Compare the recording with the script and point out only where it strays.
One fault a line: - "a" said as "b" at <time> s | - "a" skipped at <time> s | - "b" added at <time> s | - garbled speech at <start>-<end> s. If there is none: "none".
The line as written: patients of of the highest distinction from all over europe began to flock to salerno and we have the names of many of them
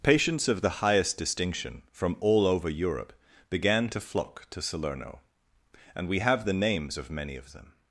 - "of" skipped at 0.6 s